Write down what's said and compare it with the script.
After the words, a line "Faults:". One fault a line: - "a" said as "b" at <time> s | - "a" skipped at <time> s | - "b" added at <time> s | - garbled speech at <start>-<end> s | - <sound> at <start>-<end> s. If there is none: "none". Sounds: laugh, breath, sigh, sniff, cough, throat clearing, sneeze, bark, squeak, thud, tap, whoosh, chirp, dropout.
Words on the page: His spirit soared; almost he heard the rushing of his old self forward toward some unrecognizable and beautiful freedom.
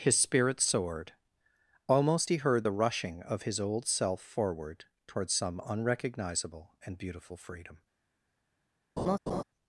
His spirit soared; almost he heard the rushing of his old self forward toward some unrecognizable and beautiful freedom.
Faults:
- laugh at 9.0-9.4 s